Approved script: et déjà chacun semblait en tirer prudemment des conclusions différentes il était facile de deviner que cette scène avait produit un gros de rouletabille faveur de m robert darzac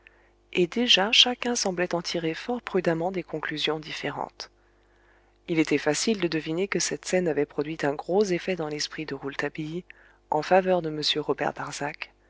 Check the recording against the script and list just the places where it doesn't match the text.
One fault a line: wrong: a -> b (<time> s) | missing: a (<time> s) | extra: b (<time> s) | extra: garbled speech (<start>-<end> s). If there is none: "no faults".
extra: fort (2.3 s)
extra: effet dans l'esprit (8.2 s)
extra: en (10.3 s)